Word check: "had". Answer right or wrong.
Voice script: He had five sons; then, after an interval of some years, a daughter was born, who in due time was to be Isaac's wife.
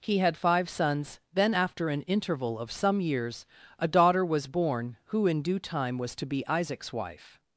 right